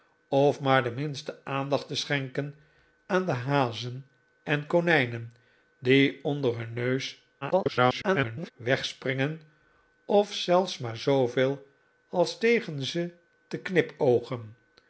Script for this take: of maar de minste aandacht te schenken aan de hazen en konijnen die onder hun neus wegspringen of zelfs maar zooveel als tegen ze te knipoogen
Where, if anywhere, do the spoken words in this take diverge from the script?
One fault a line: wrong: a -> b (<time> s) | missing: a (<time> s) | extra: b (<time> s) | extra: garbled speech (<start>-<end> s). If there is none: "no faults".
extra: garbled speech (7.4-8.5 s)